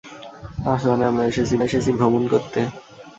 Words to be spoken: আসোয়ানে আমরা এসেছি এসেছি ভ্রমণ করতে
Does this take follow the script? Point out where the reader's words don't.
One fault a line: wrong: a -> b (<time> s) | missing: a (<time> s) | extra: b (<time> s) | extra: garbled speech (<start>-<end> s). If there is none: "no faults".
no faults